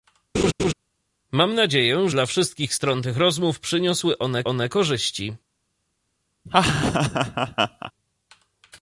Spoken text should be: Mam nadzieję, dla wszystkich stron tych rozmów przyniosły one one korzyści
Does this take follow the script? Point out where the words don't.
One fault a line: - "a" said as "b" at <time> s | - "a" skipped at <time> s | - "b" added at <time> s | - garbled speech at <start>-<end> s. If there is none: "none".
none